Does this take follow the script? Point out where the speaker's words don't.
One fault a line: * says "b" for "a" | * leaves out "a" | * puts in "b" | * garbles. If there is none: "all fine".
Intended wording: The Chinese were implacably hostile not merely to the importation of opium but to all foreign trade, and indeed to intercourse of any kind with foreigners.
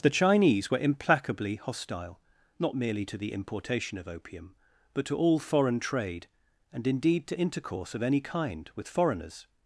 all fine